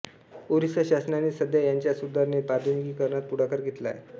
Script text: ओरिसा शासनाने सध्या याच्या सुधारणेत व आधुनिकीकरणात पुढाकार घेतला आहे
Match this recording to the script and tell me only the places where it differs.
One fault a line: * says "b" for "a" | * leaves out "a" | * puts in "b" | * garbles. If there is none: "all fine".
* leaves out "व"